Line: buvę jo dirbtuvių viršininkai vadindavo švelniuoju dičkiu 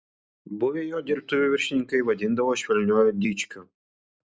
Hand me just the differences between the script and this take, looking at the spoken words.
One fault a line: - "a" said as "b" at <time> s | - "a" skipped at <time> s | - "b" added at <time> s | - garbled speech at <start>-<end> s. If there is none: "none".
none